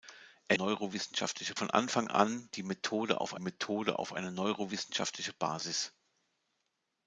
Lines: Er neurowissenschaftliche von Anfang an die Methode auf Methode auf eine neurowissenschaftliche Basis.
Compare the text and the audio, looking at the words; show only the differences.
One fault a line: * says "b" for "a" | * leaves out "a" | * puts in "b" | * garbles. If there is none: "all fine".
all fine